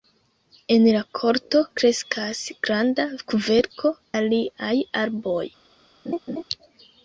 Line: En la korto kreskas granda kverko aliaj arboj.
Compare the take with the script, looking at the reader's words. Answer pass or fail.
pass